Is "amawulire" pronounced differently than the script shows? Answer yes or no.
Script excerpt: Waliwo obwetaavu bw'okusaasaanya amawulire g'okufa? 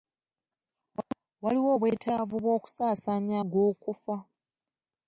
yes